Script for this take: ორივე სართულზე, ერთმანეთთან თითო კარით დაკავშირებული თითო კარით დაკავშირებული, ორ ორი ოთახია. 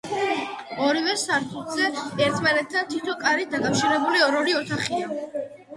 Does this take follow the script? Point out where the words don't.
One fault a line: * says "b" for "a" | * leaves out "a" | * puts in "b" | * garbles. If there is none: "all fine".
* leaves out "თითო კარით დაკავშირებული"